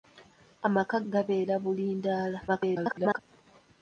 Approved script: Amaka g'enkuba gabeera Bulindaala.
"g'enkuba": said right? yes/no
no